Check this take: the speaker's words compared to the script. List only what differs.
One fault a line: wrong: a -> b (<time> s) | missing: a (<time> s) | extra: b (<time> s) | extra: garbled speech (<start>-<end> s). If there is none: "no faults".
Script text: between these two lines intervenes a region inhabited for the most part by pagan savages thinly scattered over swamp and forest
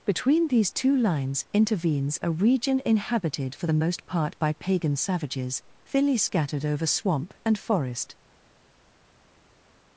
no faults